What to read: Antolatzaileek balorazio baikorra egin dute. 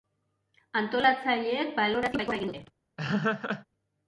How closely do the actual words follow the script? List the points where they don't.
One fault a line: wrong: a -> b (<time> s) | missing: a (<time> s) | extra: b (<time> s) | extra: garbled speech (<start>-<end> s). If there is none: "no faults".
no faults